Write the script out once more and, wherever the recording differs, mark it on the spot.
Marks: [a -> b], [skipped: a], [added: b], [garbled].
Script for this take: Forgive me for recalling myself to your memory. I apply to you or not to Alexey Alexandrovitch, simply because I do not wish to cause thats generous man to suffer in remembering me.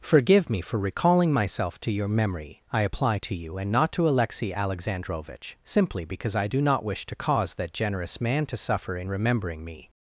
Forgive me for recalling myself to your memory. I apply to you [or -> and] not to Alexey Alexandrovitch, simply because I do not wish to cause [thats -> that] generous man to suffer in remembering me.